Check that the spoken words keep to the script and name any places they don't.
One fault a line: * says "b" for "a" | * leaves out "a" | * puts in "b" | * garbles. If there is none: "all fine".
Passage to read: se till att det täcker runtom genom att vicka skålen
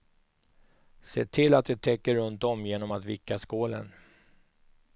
all fine